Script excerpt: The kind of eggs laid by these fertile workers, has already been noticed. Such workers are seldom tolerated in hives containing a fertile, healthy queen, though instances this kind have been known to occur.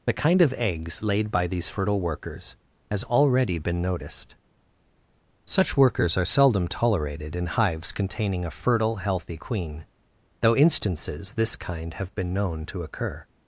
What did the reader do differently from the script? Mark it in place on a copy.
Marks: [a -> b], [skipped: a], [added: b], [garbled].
The kind of eggs laid by these fertile workers, has already been noticed. Such workers are seldom tolerated in hives containing a fertile, healthy queen, though instances this kind have been known to occur.